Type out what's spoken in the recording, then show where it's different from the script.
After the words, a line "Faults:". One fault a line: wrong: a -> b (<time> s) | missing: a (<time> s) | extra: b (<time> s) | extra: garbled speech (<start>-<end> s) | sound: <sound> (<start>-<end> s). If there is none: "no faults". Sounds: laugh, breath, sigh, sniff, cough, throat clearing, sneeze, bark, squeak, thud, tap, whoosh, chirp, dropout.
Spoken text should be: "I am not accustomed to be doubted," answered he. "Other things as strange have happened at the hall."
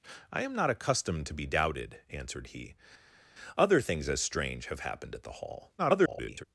"I am not accustomed to be doubted," answered he. "Other things as strange have happened at the hall." [garbled]
Faults:
extra: garbled speech (5.8-6.4 s)